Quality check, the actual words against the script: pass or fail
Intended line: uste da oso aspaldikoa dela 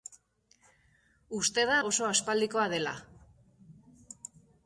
pass